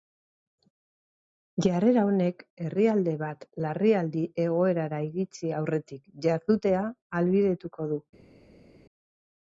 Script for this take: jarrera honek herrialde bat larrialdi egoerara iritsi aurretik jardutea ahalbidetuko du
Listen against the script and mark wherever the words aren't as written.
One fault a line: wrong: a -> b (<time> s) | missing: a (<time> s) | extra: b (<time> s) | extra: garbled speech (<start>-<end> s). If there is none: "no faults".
no faults